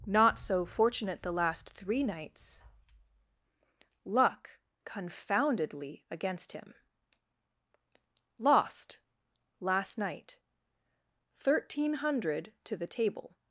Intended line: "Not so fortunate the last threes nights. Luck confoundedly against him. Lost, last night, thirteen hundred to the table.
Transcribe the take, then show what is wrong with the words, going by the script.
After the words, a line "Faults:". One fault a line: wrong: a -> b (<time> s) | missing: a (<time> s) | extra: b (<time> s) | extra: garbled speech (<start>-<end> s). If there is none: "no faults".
"Not so fortunate the last three nights. Luck confoundedly against him. Lost, last night, thirteen hundred to the table.
Faults:
wrong: threes -> three (1.7 s)